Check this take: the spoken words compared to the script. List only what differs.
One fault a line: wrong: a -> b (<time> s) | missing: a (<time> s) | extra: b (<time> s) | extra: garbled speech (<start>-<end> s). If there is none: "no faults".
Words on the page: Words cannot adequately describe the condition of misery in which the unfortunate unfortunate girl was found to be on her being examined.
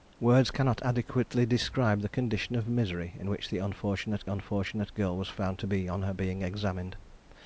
no faults